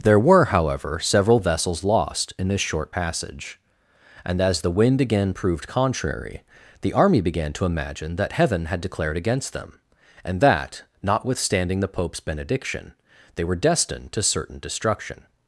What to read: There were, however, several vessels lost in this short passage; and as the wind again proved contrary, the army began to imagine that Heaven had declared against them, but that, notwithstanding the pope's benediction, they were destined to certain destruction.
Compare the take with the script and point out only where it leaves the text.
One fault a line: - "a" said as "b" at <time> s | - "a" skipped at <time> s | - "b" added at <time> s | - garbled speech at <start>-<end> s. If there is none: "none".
- "but" said as "and" at 10.2 s